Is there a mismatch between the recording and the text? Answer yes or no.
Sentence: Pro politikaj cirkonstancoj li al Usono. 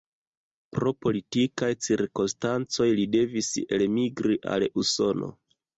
yes